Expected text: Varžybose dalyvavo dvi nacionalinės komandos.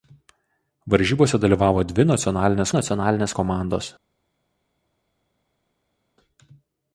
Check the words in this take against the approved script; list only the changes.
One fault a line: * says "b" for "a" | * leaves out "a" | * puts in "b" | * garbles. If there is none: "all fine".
* puts in "nacionalinės"